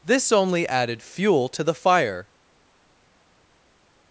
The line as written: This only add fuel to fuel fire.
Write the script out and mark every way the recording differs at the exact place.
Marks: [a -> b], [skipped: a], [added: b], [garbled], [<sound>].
This only [add -> added] fuel to [fuel -> the] fire.